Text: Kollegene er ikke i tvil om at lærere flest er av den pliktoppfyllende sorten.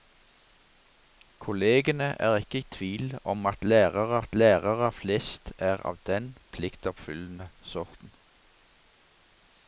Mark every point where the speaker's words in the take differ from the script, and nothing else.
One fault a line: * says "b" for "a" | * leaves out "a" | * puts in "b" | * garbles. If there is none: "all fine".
* puts in "at lærere"